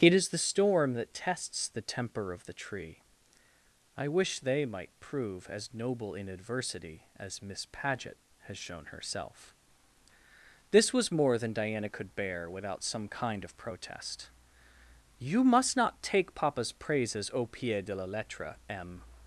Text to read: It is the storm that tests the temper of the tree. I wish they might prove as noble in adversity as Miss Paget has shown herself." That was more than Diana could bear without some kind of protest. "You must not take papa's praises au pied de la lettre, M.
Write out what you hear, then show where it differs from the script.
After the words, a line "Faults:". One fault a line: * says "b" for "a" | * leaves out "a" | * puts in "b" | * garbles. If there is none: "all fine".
It is the storm that tests the temper of the tree. I wish they might prove as noble in adversity as Miss Paget has shown herself." This was more than Diana could bear without some kind of protest. "You must not take papa's praises au pied de la lettre, M.
Faults:
* says "This" for "That"